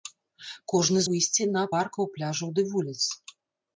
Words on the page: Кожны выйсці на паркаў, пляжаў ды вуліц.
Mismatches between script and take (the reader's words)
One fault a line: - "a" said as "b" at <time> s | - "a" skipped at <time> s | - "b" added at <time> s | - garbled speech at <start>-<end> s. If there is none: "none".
none